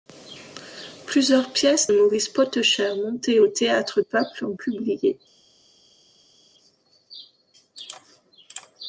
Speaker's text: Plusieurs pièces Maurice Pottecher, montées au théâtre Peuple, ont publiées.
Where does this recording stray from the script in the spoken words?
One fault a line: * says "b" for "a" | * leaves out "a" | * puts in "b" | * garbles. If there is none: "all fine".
all fine